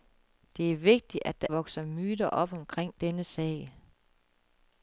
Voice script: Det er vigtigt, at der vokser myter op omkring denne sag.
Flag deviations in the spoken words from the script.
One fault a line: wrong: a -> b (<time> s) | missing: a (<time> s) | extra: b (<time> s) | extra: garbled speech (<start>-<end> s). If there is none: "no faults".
no faults